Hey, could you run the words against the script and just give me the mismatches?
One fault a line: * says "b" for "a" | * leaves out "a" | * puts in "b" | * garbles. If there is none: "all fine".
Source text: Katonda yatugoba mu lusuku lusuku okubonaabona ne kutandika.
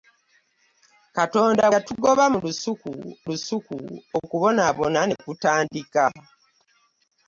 all fine